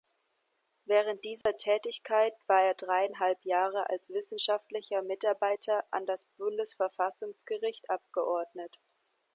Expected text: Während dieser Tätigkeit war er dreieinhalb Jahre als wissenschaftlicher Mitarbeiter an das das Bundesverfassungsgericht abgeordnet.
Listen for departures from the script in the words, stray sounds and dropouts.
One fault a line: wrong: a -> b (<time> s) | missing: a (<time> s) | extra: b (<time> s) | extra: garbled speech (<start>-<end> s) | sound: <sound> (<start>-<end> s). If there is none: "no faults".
sound: dropout (1.4-1.5 s)
missing: das (6.2 s)